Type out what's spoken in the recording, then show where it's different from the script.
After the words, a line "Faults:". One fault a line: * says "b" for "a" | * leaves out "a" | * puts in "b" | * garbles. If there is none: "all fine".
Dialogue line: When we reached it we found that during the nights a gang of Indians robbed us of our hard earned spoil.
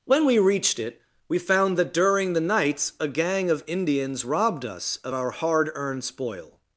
When we reached it we found that during the nights a gang of Indians robbed us of our hard earned spoil.
Faults:
all fine